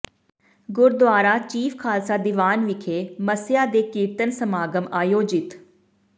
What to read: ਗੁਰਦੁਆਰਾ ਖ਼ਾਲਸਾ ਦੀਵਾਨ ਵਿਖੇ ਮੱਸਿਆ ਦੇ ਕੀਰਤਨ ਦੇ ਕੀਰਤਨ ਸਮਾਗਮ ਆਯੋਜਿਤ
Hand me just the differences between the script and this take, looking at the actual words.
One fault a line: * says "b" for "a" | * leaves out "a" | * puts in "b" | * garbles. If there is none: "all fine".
* puts in "ਚੀਫ਼"
* leaves out "ਦੇ ਕੀਰਤਨ"